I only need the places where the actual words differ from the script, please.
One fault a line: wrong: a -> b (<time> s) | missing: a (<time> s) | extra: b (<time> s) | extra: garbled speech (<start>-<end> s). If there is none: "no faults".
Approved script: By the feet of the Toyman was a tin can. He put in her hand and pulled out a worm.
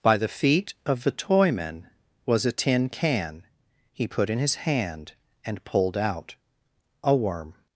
wrong: her -> his (4.4 s)